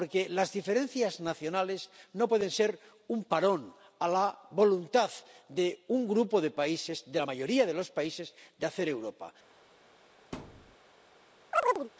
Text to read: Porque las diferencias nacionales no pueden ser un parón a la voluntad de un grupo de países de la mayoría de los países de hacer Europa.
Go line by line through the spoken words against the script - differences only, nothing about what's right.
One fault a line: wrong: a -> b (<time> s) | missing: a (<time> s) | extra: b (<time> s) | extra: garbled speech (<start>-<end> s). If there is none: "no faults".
no faults